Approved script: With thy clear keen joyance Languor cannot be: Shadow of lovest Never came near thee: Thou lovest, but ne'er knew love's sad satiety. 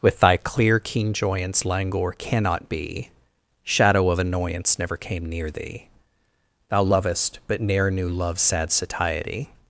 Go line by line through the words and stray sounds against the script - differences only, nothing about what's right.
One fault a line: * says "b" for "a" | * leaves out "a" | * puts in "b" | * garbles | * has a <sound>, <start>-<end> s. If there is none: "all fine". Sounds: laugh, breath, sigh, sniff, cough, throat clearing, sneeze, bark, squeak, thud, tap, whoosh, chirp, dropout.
* says "annoyance" for "lovest"